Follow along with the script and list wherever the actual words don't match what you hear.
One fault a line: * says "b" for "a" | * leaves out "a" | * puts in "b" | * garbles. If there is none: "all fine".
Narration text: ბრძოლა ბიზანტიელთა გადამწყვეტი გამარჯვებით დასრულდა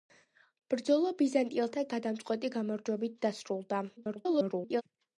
* garbles